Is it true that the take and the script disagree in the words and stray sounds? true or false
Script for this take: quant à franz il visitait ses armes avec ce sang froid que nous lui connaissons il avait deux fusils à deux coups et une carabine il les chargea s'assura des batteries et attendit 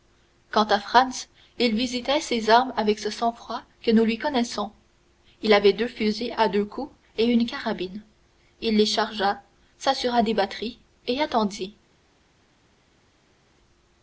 false